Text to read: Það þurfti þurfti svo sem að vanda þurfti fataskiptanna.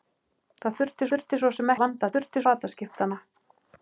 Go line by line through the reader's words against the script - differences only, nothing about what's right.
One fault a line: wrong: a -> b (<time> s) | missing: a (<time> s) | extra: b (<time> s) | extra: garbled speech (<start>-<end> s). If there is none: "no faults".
no faults